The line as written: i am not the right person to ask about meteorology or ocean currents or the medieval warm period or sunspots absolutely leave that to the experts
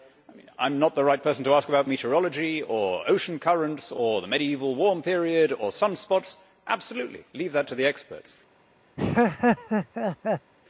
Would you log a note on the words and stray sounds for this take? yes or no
yes